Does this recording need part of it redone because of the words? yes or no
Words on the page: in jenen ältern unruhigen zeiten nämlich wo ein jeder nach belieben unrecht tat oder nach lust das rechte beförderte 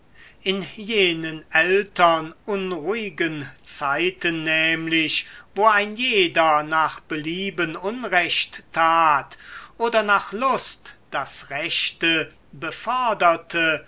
no